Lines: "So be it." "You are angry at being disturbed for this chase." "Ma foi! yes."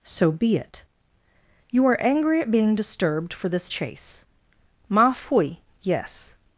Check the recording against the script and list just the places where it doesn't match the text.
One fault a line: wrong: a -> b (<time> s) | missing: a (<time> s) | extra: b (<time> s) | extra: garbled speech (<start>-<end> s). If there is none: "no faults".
no faults